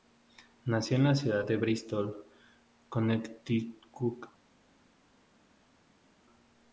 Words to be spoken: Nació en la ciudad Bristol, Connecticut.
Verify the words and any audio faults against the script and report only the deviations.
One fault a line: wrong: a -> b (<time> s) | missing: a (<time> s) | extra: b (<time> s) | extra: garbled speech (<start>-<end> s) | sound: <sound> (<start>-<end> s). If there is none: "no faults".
extra: de (1.4 s)